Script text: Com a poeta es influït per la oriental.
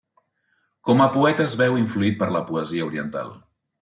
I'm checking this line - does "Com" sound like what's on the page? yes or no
yes